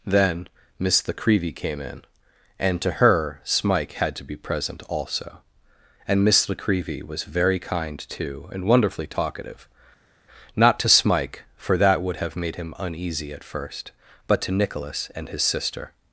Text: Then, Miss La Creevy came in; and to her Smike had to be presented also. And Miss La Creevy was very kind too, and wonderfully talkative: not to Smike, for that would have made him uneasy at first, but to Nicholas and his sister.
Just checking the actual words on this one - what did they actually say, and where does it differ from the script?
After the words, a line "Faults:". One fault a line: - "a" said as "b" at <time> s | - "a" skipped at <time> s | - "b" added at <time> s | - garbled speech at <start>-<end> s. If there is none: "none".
Then, Miss La Creevy came in; and to her Smike had to be present also. And Miss La Creevy was very kind too, and wonderfully talkative: not to Smike, for that would have made him uneasy at first, but to Nicholas and his sister.
Faults:
- "presented" said as "present" at 4.3 s